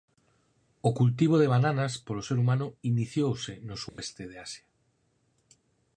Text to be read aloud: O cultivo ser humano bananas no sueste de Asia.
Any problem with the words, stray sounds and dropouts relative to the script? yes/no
yes